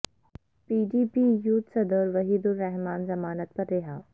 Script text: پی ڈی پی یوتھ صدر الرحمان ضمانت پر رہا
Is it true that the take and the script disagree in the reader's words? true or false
true